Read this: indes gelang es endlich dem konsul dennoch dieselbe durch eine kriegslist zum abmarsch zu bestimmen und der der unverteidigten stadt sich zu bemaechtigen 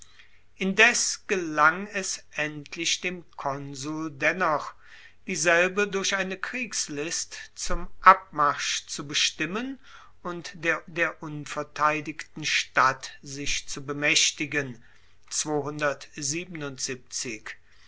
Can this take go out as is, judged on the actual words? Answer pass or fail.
pass